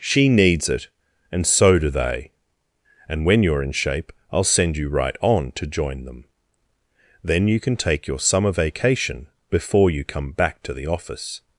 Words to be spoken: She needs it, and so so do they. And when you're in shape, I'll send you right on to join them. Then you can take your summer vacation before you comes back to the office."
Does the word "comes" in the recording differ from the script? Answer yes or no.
yes